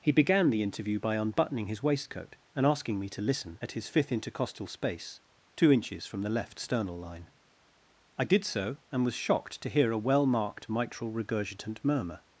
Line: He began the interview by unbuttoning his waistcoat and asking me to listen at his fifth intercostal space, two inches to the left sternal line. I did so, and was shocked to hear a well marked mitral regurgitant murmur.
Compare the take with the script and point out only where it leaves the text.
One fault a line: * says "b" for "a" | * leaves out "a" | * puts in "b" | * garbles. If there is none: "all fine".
* says "from" for "to"